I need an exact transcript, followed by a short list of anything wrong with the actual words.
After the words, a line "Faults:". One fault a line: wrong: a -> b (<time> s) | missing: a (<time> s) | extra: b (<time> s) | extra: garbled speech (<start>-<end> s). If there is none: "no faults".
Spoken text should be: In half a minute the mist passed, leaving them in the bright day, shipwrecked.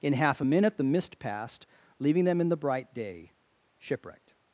In half a minute the mist passed, leaving them in the bright day, shipwrecked.
Faults:
no faults